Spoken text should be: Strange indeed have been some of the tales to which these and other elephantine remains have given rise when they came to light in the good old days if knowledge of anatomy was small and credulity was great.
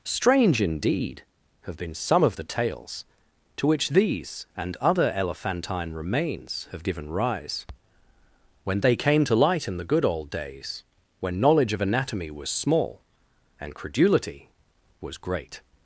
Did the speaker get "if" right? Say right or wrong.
wrong